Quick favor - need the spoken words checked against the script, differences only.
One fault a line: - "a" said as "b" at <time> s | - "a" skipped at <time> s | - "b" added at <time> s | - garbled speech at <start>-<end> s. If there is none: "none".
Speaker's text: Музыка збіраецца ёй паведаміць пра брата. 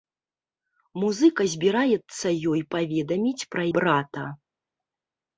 none